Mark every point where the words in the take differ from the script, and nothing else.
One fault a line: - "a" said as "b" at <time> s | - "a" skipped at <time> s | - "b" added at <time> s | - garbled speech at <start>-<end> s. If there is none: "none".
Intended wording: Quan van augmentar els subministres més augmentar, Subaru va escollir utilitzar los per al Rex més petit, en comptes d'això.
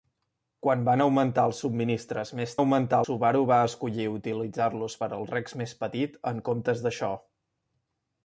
none